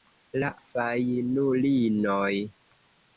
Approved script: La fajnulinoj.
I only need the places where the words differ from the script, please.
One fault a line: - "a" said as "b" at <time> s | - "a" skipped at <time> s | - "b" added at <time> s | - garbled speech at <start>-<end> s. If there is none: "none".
none